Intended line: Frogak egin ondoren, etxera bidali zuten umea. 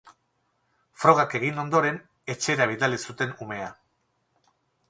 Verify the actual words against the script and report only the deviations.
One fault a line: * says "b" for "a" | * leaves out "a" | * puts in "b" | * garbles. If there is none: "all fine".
all fine